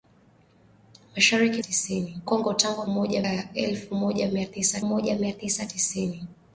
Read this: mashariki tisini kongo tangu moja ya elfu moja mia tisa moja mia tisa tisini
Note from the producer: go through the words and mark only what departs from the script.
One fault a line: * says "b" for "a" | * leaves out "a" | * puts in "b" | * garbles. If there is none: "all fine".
all fine